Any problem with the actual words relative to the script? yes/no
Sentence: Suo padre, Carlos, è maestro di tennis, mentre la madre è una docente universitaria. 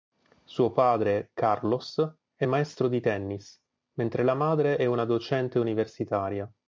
no